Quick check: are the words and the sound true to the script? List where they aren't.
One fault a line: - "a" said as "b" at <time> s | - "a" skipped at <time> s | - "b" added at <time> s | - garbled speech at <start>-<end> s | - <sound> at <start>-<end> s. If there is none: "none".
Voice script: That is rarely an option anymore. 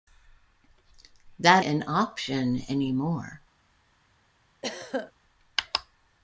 - "is rarely" skipped at 1.6 s
- throat clearing at 4.6-5.1 s